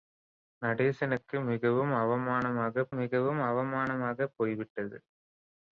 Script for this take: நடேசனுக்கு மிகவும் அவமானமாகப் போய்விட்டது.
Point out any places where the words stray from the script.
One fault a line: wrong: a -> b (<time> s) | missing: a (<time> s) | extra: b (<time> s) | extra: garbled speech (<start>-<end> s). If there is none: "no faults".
extra: மிகவும் அவமானமாகப் (2.9 s)